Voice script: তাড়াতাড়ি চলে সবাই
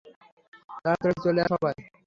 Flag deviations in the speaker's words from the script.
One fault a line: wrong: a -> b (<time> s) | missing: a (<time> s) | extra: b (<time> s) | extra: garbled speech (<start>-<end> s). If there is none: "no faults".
no faults